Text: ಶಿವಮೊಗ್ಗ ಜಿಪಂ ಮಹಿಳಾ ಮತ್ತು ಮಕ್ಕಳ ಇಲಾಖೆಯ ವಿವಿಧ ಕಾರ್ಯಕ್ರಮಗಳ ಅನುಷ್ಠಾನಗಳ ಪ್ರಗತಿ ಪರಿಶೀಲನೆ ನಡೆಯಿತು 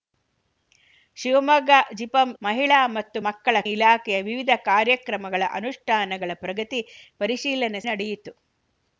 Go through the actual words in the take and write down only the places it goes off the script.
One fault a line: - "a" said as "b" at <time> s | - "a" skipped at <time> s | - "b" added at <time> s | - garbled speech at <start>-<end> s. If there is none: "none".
none